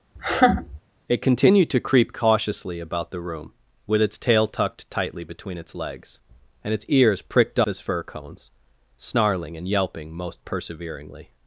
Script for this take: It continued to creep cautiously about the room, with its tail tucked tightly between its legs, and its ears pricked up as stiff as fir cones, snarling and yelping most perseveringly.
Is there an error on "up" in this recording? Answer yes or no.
yes